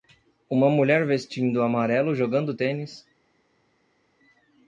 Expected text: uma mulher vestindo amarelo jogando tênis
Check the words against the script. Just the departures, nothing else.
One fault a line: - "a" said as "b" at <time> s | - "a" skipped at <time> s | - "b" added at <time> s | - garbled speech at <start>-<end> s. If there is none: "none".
none